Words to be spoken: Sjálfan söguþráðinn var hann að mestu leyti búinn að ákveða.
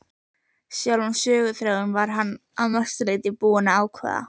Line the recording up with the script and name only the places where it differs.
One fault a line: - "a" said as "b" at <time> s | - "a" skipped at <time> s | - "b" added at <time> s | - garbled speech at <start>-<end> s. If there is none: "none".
none